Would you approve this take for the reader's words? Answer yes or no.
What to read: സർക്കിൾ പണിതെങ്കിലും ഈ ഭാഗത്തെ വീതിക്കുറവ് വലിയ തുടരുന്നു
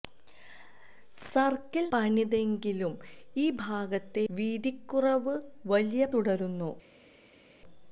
yes